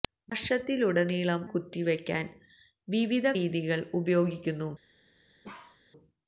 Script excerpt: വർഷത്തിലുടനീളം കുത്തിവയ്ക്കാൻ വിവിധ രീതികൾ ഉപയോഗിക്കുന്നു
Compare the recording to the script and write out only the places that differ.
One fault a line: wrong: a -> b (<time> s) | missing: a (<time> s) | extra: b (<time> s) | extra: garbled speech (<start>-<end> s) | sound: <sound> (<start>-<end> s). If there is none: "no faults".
sound: bark (5.4-5.8 s)